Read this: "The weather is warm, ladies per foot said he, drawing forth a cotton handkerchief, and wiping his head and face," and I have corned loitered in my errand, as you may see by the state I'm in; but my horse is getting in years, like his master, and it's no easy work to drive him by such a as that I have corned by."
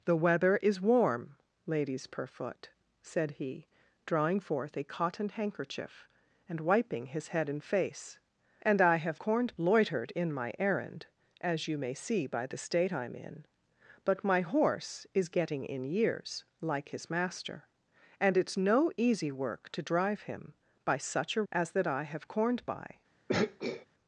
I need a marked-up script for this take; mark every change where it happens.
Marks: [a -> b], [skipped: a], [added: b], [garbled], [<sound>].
"The weather is warm, ladies per foot said he, drawing forth a cotton handkerchief, and wiping his head and face," and I have corned loitered in my errand, as you may see by the state I'm in; but my horse is getting in years, like his master, and it's no easy work to drive him by such a as that I have corned by." [throat clearing]